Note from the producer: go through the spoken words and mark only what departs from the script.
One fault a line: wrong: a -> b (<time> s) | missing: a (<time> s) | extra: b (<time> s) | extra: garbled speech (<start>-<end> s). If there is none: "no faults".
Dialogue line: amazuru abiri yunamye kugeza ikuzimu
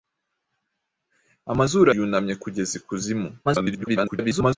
missing: abiri (1.9 s)
extra: garbled speech (3.4-4.6 s)